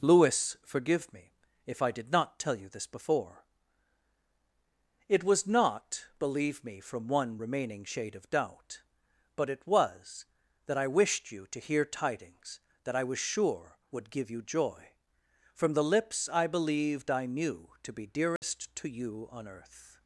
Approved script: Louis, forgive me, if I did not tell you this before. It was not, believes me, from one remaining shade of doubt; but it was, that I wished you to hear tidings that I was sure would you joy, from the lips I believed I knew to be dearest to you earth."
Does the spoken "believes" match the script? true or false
false